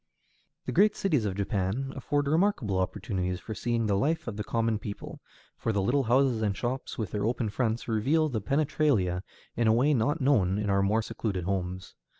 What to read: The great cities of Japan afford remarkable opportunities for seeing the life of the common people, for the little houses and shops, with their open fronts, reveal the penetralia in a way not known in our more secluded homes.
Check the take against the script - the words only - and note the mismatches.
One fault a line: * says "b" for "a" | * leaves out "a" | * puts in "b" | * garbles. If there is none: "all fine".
all fine